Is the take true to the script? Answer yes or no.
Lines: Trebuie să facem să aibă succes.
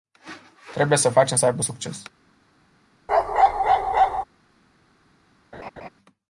yes